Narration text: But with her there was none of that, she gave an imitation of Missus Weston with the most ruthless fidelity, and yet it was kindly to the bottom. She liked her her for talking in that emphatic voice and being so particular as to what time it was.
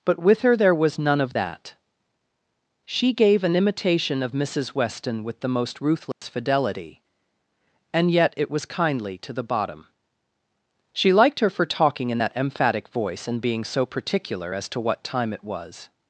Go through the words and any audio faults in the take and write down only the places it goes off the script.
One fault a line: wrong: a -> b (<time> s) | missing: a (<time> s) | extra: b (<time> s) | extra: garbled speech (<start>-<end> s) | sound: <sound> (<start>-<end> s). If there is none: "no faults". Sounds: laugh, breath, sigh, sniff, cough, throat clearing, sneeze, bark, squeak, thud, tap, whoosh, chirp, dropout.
sound: dropout (6.1-6.2 s)
missing: her (11.5 s)